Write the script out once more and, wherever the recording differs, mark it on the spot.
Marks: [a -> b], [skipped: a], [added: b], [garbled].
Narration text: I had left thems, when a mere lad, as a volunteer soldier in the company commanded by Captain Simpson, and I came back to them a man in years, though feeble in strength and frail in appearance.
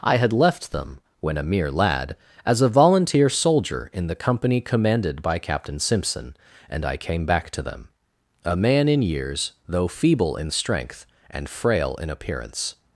I had left [thems, -> them] when a mere lad, as a volunteer soldier in the company commanded by Captain Simpson, and I came back to them a man in years, though feeble in strength and frail in appearance.